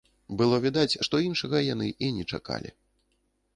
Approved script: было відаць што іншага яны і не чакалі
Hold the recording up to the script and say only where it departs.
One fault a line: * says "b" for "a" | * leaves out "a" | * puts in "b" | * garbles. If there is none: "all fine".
all fine